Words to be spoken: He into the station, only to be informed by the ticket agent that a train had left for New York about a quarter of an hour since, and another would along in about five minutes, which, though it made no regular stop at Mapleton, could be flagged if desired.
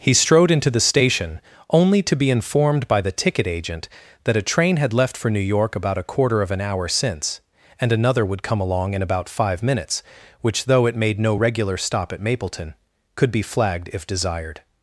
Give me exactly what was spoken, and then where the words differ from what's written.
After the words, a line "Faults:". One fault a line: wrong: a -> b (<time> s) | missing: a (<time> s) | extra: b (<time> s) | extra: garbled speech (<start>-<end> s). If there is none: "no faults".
He strode into the station, only to be informed by the ticket agent that a train had left for New York about a quarter of an hour since, and another would come along in about five minutes, which, though it made no regular stop at Mapleton, could be flagged if desired.
Faults:
extra: strode (0.1 s)
extra: come (8.4 s)